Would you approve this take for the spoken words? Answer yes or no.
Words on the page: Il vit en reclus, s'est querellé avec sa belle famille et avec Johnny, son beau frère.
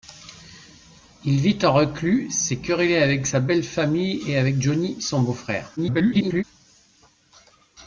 no